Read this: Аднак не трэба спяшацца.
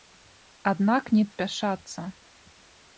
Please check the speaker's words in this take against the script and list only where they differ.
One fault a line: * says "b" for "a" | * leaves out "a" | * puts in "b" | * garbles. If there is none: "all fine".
* leaves out "трэба"